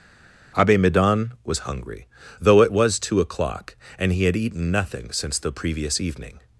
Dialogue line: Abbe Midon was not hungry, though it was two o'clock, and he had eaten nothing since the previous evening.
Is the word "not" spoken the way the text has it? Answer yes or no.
no